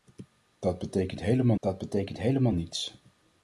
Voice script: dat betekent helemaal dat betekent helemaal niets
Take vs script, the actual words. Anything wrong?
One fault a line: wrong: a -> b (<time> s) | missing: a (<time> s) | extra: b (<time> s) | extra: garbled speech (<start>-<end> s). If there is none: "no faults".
no faults